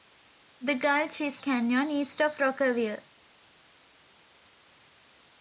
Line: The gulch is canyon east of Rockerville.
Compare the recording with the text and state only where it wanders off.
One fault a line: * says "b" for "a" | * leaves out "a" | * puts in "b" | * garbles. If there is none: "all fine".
all fine